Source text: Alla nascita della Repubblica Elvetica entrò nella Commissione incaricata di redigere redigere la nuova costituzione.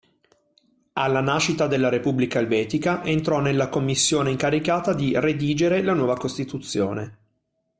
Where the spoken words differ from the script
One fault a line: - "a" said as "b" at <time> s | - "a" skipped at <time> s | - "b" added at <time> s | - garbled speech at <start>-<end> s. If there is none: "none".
- "redigere" skipped at 5.8 s